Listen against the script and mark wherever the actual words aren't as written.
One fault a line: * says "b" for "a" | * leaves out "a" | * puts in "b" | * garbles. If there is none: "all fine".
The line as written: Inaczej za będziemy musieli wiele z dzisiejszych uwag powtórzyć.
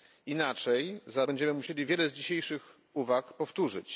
all fine